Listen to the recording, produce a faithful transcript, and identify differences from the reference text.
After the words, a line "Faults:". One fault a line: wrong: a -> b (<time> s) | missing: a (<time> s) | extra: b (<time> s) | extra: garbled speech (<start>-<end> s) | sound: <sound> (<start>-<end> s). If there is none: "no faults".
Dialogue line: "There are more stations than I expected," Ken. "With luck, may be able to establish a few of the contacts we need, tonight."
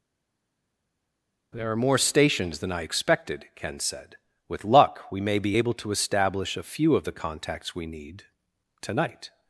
"There are more stations than I expected," Ken said. "With luck, we may be able to establish a few of the contacts we need, tonight."
Faults:
extra: said (3.8 s)
extra: we (5.1 s)